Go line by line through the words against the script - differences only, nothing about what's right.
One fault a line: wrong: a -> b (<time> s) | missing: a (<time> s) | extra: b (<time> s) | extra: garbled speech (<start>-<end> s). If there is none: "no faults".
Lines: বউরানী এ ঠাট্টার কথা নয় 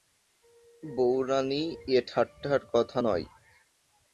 no faults